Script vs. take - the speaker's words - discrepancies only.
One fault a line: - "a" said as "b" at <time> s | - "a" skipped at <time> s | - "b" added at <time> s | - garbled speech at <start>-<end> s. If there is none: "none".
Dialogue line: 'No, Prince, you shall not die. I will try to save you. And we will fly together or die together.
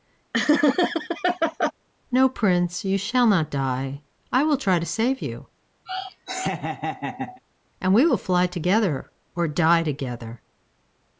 none